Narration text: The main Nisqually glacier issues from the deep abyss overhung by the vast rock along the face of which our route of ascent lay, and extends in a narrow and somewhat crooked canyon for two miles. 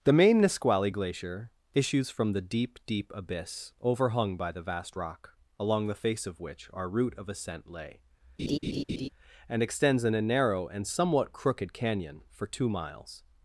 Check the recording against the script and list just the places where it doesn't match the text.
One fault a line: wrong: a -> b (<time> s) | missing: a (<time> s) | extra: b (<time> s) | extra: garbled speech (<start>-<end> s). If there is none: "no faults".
extra: deep (2.9 s)